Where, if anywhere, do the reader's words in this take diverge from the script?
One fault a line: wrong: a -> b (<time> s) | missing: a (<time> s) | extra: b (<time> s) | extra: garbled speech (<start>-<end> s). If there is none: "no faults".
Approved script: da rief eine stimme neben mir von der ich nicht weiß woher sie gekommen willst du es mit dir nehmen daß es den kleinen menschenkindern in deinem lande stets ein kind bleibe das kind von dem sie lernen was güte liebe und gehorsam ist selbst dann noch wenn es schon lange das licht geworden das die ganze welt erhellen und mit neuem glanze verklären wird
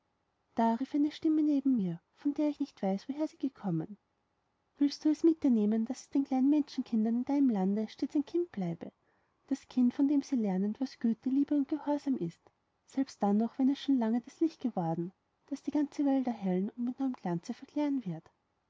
no faults